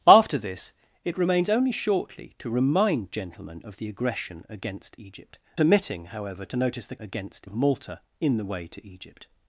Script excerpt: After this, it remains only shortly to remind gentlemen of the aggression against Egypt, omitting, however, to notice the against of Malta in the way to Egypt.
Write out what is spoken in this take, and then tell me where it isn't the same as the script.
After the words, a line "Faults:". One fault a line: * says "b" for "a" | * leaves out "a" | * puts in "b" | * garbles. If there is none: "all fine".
After this, it remains only shortly to remind gentlemen of the aggression against Egypt, omitting, however, to notice the against of Malta in the way to Egypt.
Faults:
all fine